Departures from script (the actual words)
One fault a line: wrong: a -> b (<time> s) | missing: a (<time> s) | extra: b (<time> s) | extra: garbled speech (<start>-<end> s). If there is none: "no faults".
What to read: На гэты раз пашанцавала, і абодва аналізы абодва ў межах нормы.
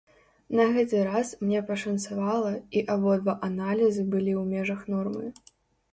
extra: мне (1.4 s)
wrong: абодва -> былі (4.2 s)